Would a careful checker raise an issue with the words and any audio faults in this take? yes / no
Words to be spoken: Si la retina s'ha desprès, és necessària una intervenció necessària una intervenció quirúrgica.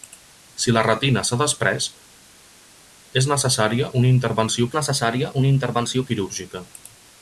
no